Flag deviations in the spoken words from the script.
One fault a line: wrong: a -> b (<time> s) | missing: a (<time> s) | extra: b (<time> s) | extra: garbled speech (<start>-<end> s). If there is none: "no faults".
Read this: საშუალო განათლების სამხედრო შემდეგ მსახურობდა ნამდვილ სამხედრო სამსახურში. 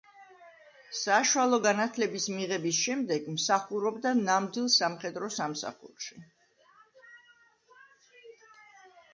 wrong: სამხედრო -> მიღების (2.4 s)